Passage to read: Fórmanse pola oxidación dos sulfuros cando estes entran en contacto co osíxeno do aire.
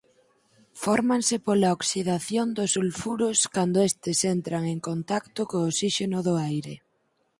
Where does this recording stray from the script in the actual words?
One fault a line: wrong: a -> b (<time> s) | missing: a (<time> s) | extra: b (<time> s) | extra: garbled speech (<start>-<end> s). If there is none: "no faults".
no faults